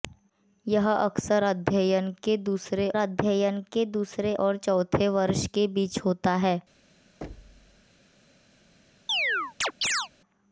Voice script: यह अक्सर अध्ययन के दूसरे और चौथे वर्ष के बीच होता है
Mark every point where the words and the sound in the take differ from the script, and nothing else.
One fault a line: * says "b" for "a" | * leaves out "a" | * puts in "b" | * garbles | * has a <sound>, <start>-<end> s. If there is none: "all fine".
* puts in "अध्ययन के दूसरे"
* has a thud, 7.2-7.9 s
* has a chirp, 9.1-10.1 s